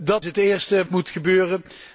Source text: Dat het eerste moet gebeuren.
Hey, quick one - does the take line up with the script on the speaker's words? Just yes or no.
yes